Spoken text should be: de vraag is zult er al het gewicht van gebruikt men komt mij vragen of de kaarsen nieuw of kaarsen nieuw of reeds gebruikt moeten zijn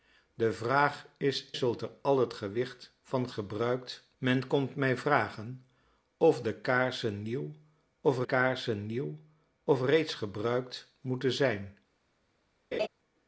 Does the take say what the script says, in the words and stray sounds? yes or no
no